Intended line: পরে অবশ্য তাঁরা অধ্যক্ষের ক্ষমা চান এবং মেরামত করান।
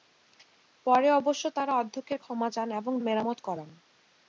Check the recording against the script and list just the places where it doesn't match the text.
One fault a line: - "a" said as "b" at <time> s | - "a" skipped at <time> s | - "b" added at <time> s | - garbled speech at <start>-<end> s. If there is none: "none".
none